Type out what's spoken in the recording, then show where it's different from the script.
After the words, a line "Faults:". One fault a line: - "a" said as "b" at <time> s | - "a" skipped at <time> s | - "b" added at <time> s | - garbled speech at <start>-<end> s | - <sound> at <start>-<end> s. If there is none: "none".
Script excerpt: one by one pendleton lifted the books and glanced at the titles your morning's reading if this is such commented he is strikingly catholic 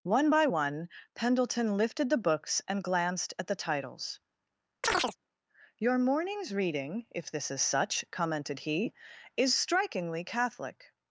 one by one pendleton lifted the books and glanced at the titles your morning's reading if this is such commented he is strikingly catholic
Faults:
- chirp at 4.8-5.2 s